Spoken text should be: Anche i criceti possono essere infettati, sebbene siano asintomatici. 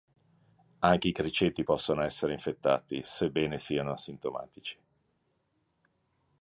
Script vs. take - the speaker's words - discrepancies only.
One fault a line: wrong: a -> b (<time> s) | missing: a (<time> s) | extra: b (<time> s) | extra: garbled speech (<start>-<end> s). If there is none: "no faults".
no faults